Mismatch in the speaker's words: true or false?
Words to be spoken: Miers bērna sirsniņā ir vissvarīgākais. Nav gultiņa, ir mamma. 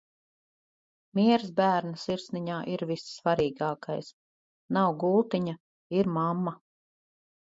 false